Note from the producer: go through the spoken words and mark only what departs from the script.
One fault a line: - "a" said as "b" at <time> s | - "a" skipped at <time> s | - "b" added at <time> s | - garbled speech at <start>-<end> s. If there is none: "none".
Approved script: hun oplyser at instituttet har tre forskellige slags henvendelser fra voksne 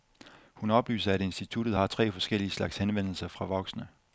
none